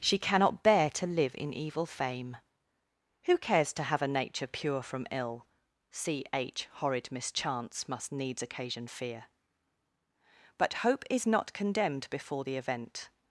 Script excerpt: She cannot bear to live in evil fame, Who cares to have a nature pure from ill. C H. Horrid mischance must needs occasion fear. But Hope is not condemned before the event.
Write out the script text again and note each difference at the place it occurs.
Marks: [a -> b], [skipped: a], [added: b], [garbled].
She cannot bear to live in evil fame, Who cares to have a nature pure from ill. C H. Horrid mischance must needs occasion fear. But Hope is not condemned before the event.